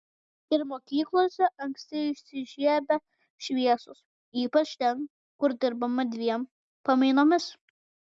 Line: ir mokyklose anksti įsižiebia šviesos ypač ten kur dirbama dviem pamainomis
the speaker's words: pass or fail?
pass